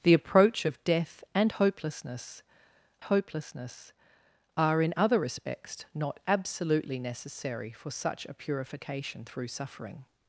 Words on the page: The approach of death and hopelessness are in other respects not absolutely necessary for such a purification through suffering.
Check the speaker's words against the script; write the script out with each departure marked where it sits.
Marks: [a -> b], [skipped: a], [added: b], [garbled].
The approach of death and hopelessness [added: hopelessness] are in other respects not absolutely necessary for such a purification through suffering.